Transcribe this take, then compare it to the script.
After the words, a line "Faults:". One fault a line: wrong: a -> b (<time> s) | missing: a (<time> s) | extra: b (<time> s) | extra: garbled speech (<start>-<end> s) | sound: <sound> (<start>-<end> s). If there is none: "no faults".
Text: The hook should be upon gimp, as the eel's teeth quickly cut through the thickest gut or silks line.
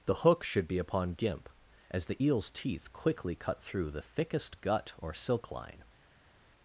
The hook should be upon gimp, as the eel's teeth quickly cut through the thickest gut or silk line.
Faults:
wrong: silks -> silk (5.1 s)